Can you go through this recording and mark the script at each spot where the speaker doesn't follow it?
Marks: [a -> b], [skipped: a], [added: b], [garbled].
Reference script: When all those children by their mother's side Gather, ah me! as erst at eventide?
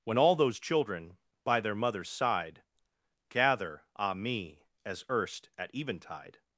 When all those children by their mother's side Gather, ah me! as erst at eventide?